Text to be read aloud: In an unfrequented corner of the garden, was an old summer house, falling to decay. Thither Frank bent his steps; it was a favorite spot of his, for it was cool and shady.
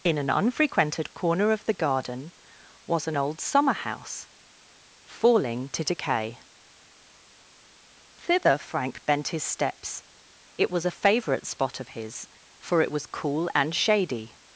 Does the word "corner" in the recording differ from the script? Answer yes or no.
no